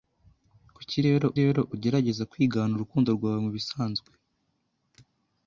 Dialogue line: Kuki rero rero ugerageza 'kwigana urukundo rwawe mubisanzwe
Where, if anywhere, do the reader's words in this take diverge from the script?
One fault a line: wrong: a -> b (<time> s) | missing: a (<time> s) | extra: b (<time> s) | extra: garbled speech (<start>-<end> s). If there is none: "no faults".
no faults